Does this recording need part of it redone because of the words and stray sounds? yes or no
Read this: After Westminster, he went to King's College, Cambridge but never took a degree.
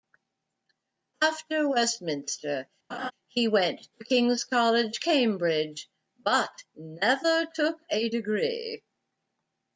yes